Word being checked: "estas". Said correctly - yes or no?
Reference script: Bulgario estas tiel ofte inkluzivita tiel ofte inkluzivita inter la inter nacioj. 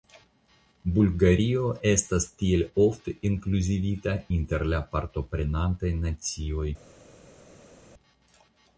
yes